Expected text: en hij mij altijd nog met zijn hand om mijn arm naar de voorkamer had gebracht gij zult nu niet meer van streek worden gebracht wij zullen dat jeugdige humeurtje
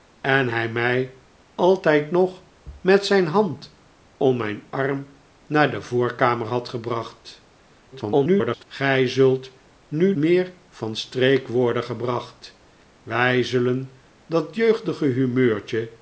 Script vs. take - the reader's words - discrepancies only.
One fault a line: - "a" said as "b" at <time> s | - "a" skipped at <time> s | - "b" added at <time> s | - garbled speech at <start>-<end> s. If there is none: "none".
- garbled speech at 7.9-8.6 s
- "niet" skipped at 10.2 s